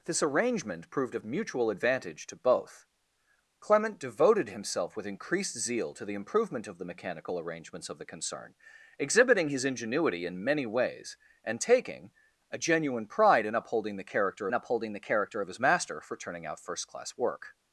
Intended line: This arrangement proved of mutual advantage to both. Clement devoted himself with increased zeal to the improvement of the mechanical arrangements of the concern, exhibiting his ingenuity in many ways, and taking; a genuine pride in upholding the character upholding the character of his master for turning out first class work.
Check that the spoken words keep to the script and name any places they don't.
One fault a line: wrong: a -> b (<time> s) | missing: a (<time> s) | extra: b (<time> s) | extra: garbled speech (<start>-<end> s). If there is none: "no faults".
no faults